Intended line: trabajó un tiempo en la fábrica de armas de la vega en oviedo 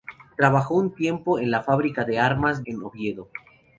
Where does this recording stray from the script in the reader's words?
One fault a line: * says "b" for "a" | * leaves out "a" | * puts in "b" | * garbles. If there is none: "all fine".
* leaves out "de la vega"